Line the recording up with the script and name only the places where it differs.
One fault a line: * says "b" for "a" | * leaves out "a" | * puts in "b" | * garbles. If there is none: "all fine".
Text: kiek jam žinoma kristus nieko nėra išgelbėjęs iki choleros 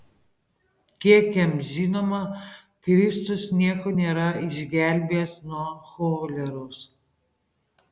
* says "nuo" for "iki"